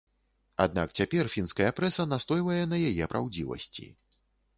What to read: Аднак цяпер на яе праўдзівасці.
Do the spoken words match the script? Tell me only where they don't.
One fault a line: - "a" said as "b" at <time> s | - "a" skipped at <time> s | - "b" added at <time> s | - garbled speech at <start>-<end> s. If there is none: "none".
- "фінская прэса настойвае" added at 1.3 s